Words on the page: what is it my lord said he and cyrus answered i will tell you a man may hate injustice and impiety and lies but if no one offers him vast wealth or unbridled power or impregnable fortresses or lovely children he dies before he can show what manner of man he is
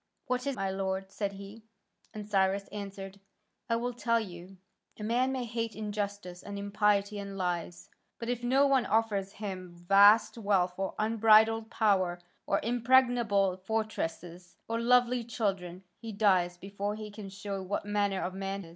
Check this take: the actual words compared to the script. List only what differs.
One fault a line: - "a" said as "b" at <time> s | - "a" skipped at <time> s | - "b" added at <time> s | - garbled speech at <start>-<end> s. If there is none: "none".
- "it" skipped at 0.6 s
- "he" skipped at 18.6 s